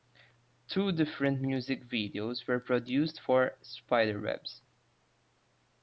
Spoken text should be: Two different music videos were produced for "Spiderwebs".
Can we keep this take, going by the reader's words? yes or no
yes